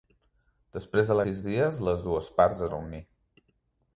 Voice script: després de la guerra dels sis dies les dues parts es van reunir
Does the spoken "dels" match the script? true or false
false